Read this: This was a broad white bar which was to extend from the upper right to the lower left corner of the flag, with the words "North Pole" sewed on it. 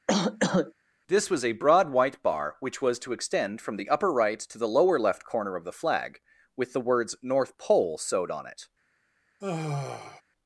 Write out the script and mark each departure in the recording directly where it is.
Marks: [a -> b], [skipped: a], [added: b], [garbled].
This was a broad white bar which was to extend from the upper right to the lower left corner of the flag, with the words "North Pole" sewed on it.